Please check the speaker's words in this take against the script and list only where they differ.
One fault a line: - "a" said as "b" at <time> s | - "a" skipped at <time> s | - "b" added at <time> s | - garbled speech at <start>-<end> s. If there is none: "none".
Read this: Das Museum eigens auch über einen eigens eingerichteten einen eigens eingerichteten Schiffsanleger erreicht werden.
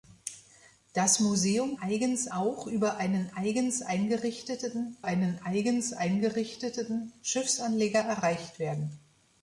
none